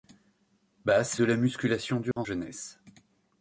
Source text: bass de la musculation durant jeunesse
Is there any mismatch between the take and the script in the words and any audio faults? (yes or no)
yes